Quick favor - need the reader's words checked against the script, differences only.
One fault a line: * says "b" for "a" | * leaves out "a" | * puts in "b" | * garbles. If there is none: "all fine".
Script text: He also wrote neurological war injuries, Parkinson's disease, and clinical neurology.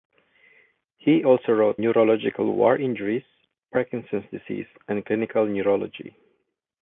all fine